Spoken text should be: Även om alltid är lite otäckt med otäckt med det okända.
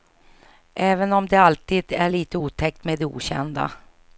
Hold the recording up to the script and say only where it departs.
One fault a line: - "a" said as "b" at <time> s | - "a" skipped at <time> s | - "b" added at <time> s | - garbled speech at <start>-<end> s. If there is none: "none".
- "det" added at 1.3 s
- "otäckt med" skipped at 3.0 s